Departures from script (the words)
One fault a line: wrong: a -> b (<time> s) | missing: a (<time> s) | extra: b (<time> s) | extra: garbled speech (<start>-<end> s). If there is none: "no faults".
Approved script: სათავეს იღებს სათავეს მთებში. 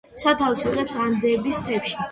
wrong: სათავეს -> ანდების (1.1 s)